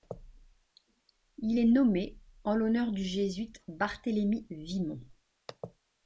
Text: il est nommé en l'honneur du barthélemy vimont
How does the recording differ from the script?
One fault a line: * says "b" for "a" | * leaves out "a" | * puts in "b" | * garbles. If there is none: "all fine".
* puts in "jésuite"